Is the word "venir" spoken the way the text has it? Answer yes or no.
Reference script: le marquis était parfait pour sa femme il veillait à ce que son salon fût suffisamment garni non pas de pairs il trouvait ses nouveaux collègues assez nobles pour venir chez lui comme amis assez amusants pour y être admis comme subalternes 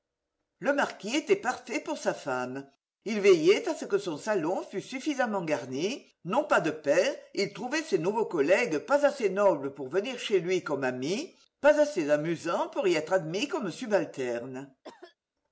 yes